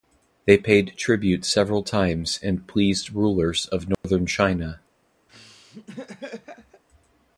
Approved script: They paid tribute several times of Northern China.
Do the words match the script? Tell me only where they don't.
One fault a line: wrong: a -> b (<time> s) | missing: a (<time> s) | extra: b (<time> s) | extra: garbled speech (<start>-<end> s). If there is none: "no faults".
extra: and pleased rulers (2.4 s)